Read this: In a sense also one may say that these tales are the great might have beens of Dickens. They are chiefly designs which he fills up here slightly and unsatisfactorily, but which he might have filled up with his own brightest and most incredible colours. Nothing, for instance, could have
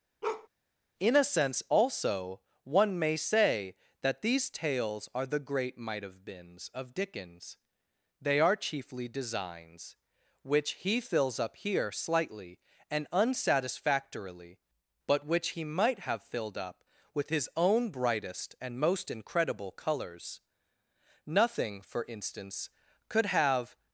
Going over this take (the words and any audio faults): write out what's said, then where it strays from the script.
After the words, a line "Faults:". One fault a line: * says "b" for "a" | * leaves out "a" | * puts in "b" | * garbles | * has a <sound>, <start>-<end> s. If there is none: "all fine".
In a sense also one may say that these tales are the great might have beens of Dickens. They are chiefly designs which he fills up here slightly and unsatisfactorily, but which he might have filled up with his own brightest and most incredible colours. Nothing, for instance, could have
Faults:
* has a bark, 0.2-0.5 s